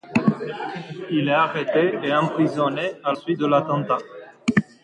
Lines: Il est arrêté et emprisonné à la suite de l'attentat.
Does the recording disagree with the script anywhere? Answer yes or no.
yes